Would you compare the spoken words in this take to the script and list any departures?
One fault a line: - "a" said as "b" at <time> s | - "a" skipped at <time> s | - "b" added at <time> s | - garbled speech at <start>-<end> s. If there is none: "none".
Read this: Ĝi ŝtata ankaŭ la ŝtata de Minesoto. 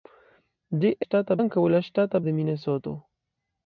none